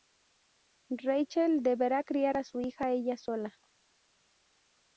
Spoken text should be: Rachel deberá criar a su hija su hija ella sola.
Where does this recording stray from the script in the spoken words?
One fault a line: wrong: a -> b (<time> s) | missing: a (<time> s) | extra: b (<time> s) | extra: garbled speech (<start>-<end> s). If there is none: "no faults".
missing: su hija (2.9 s)